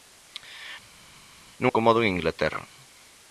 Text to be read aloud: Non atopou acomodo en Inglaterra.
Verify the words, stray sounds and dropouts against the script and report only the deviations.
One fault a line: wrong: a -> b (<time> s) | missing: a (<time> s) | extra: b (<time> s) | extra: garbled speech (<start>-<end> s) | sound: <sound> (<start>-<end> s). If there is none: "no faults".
missing: atopou (1.7 s)